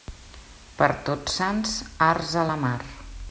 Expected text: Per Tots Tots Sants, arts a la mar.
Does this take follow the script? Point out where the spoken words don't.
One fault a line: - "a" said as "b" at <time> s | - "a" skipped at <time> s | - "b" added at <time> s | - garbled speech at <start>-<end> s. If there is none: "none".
- "Tots" skipped at 1.4 s